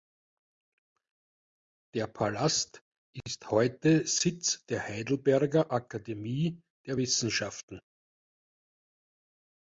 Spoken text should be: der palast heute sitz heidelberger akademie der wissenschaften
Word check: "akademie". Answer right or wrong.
right